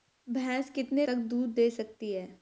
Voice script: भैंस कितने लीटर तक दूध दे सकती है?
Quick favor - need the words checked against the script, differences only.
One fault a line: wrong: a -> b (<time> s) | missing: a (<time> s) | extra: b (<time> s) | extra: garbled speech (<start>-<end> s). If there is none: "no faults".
missing: लीटर (1.1 s)